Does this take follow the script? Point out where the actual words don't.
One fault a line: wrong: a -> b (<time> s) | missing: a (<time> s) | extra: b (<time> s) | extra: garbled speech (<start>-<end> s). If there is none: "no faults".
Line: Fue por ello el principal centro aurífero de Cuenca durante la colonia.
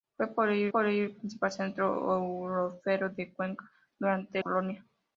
extra: por ello (0.7 s)
missing: la (4.4 s)